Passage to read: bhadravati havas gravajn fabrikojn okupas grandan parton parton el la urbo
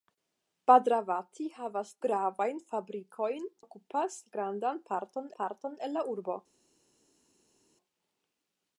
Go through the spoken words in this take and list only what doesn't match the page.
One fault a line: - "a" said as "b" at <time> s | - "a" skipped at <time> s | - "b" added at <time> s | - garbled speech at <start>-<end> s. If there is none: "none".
none